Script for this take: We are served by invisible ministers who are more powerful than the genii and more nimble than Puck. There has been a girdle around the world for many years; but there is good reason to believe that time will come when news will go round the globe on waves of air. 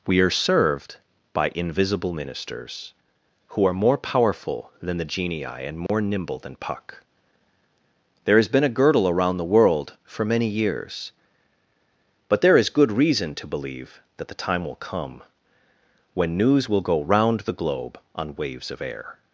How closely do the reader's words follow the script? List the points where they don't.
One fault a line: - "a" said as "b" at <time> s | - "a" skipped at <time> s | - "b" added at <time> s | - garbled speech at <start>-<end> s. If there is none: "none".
- "the" added at 14.3 s